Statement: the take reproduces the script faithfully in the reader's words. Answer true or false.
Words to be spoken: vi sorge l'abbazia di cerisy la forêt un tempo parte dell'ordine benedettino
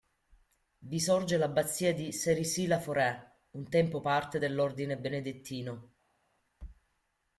true